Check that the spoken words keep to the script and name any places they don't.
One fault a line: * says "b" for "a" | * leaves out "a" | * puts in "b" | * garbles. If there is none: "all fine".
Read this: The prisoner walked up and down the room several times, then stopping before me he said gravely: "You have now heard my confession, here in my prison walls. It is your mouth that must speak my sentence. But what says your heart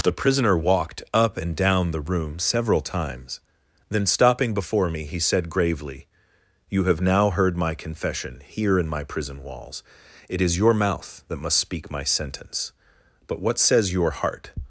all fine